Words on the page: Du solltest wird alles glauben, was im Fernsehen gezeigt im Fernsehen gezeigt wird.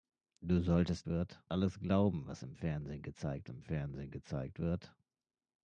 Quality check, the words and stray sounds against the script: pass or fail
pass